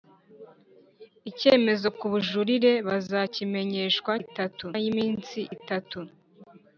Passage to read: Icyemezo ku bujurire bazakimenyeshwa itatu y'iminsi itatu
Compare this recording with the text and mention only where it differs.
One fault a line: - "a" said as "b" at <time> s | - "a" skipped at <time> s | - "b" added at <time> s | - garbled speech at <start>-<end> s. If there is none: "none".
none